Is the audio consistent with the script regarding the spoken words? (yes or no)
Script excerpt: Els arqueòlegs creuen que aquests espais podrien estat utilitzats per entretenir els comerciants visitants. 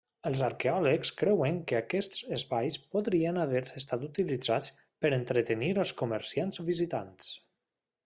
no